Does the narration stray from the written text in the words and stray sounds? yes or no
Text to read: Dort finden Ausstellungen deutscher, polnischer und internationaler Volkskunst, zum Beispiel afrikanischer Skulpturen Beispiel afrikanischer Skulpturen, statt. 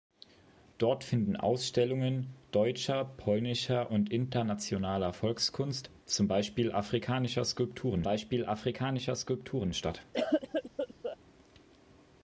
yes